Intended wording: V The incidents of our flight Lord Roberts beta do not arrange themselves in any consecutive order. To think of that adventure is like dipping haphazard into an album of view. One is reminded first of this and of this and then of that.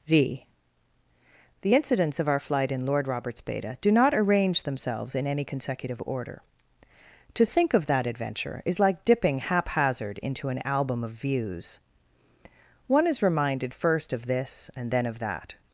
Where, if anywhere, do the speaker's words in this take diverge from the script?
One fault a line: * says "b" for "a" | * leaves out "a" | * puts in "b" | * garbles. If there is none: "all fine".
* puts in "in"
* says "views" for "view"
* leaves out "of this and"